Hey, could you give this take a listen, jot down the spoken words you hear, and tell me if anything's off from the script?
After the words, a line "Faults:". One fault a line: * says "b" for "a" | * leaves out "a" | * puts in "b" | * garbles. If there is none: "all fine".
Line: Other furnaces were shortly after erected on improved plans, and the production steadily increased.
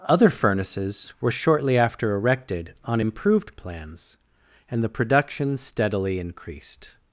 Other furnaces were shortly after erected on improved plans, and the production steadily increased.
Faults:
all fine